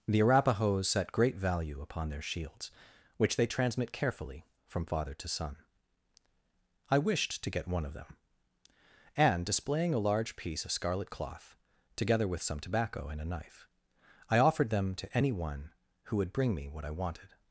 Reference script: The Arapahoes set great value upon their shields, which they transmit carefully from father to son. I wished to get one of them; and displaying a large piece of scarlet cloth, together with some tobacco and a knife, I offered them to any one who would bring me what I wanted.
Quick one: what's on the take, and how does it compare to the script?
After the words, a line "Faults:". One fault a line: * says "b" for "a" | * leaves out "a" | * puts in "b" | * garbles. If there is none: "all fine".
The Arapahoes set great value upon their shields, which they transmit carefully from father to son. I wished to get one of them; and displaying a large piece of scarlet cloth, together with some tobacco and a knife, I offered them to any one who would bring me what I wanted.
Faults:
all fine